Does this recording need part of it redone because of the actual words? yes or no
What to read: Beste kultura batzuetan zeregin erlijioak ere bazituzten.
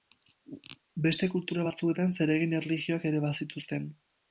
no